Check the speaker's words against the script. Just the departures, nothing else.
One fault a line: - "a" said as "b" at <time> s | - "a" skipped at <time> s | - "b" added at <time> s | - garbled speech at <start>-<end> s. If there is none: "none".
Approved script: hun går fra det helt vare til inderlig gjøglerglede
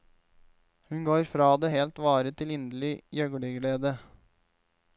none